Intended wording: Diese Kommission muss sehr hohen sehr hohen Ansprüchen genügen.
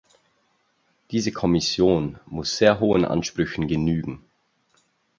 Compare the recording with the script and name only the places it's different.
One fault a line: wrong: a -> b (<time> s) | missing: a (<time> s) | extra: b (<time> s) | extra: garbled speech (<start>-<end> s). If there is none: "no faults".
missing: sehr hohen (3.0 s)